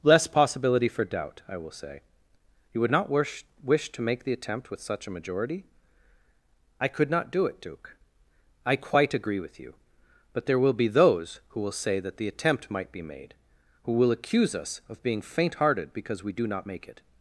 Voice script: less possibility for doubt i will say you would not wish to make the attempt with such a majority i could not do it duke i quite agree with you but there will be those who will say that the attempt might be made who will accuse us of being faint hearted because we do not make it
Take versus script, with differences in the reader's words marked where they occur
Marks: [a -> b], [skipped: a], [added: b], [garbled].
less possibility for doubt i will say you would not wish [added: wish] to make the attempt with such a majority i could not do it duke i quite agree with you but there will be those who will say that the attempt might be made who will accuse us of being faint hearted because we do not make it